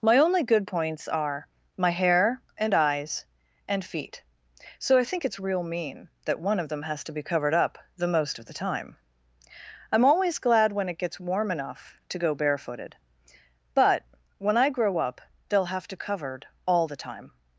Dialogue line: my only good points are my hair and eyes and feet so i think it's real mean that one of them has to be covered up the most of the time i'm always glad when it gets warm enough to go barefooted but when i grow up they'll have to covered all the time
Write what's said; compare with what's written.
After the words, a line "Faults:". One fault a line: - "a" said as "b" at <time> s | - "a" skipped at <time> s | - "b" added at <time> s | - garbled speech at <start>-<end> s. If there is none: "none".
my only good points are my hair and eyes and feet so i think it's real mean that one of them has to be covered up the most of the time i'm always glad when it gets warm enough to go barefooted but when i grow up they'll have to covered all the time
Faults:
none